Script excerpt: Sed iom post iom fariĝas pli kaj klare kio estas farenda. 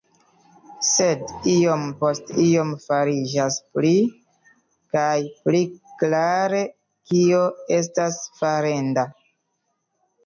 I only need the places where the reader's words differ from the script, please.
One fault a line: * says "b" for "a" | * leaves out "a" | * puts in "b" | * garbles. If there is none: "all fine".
* puts in "pli"